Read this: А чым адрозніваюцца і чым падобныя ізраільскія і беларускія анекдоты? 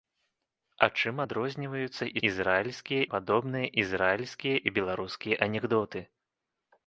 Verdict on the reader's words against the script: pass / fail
fail